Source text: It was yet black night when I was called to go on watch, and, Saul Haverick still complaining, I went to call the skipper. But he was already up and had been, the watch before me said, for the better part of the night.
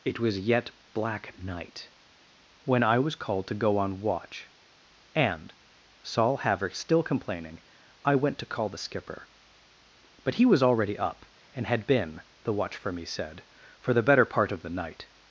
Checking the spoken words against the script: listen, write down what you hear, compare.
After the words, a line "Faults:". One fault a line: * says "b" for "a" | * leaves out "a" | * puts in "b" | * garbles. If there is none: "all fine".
It was yet black night when I was called to go on watch, and, Saul Haverick still complaining, I went to call the skipper. But he was already up and had been, the watch for me said, for the better part of the night.
Faults:
* says "for" for "before"